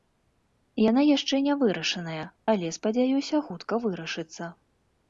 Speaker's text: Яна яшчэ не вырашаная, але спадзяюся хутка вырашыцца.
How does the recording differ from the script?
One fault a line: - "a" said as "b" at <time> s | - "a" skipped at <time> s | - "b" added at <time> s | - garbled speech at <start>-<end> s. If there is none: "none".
none